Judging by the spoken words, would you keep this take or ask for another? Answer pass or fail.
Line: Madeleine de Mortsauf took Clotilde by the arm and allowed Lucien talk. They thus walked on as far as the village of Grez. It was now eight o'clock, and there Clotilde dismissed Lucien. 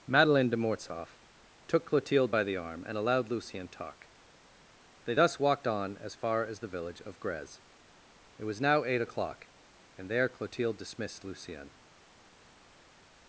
pass